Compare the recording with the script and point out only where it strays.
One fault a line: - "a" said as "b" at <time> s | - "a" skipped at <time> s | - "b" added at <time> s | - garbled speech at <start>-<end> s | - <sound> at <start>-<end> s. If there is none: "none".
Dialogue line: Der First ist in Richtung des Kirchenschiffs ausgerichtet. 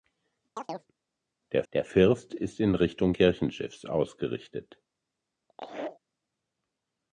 - chirp at 0.6-0.9 s
- "der" added at 1.7 s
- "des" skipped at 3.1 s
- laugh at 5.5-6.0 s